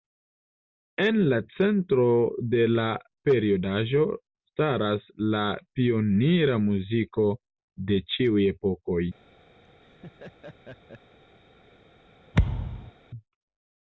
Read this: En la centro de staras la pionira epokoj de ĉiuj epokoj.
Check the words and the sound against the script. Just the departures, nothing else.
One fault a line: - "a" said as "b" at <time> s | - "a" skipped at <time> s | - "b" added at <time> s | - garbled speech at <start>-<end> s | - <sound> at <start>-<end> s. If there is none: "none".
- "la periodaĵo" added at 2.8 s
- "epokoj" said as "muziko" at 6.7 s
- laugh at 9.6-11.2 s
- thud at 12.3-12.9 s